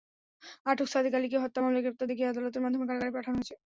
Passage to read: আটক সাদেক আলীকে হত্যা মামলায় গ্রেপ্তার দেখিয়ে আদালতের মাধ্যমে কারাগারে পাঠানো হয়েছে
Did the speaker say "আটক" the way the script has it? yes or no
yes